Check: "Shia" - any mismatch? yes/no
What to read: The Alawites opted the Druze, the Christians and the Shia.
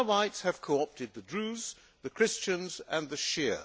no